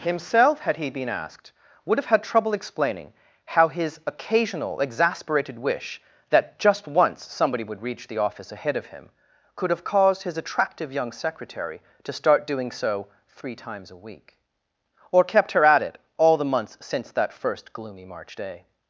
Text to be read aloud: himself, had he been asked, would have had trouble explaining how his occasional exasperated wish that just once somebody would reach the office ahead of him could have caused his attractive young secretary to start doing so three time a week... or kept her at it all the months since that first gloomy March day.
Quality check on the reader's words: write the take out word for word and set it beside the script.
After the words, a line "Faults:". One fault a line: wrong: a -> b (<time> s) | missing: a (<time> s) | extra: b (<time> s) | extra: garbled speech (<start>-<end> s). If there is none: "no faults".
himself, had he been asked, would have had trouble explaining how his occasional exasperated wish that just once somebody would reach the office ahead of him could have caused his attractive young secretary to start doing so three times a week... or kept her at it all the months since that first gloomy March day.
Faults:
wrong: time -> times (13.6 s)